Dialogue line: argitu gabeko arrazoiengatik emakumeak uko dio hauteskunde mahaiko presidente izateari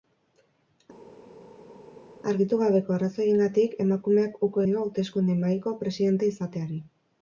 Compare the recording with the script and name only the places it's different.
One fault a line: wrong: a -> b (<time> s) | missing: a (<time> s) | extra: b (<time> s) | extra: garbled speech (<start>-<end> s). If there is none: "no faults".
no faults